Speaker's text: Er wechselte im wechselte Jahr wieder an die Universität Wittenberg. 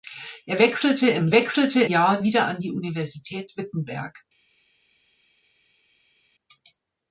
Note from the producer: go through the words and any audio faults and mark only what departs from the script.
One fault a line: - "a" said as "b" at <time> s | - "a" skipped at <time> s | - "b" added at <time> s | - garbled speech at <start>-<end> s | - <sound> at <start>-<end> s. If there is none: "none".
none